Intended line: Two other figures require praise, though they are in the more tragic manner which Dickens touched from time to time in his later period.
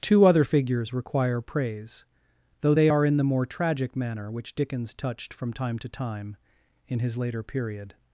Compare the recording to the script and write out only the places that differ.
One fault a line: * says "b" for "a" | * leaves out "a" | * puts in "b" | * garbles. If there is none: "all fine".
all fine